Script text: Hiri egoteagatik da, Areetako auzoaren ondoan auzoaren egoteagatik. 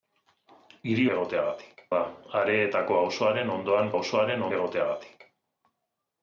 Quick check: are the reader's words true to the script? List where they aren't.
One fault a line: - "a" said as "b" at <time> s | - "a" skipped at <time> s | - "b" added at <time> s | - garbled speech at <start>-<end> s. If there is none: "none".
none